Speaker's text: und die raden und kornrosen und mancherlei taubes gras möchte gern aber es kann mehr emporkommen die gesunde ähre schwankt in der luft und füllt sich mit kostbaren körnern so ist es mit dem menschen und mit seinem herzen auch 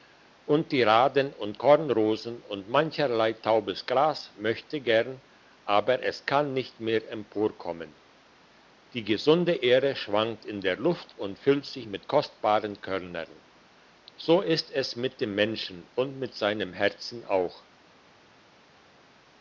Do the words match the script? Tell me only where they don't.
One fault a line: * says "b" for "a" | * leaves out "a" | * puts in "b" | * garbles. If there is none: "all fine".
* puts in "nicht"